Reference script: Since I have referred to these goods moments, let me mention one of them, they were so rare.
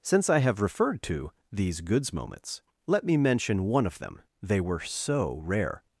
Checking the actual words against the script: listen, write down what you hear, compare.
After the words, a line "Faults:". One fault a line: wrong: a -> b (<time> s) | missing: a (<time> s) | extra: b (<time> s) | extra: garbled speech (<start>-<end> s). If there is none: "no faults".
Since I have referred to these goods moments, let me mention one of them, they were so rare.
Faults:
no faults